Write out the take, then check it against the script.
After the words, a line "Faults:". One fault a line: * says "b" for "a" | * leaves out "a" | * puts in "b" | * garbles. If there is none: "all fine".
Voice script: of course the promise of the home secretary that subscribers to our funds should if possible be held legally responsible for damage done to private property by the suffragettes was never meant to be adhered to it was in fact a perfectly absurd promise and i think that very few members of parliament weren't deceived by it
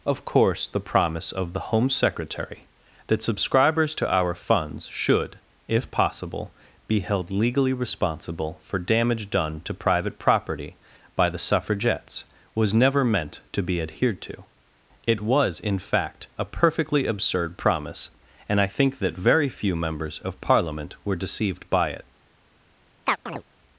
of course the promise of the home secretary that subscribers to our funds should if possible be held legally responsible for damage done to private property by the suffragettes was never meant to be adhered to it was in fact a perfectly absurd promise and i think that very few members of parliament were deceived by it
Faults:
* says "were" for "weren't"